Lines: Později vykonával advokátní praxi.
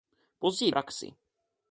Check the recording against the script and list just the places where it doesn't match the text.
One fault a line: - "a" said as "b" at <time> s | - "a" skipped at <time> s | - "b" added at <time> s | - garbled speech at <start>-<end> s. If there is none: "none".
- "vykonával advokátní" skipped at 0.7 s